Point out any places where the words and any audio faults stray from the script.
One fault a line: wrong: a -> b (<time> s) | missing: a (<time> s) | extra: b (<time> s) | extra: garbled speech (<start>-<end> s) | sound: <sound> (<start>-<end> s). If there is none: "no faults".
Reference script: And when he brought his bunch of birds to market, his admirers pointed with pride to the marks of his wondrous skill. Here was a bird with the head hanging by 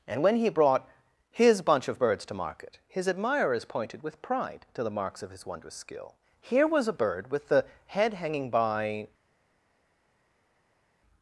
no faults